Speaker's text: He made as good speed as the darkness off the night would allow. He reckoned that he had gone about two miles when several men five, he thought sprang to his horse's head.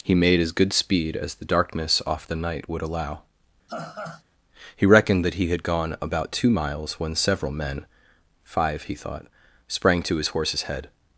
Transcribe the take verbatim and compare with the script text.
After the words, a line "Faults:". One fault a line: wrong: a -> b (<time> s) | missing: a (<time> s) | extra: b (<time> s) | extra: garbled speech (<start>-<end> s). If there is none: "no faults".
He made as good speed as the darkness off the night would allow. He reckoned that he had gone about two miles when several men five, he thought sprang to his horse's head.
Faults:
no faults